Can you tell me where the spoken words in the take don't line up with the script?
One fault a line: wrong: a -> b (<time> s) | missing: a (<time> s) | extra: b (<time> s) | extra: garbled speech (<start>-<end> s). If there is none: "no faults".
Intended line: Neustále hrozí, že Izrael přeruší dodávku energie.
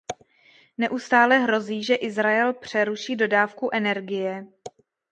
no faults